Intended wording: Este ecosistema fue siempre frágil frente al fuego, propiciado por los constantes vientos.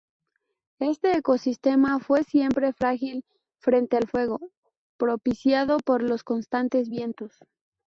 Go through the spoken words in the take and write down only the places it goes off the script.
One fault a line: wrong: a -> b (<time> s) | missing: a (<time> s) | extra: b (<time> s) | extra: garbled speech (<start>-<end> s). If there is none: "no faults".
no faults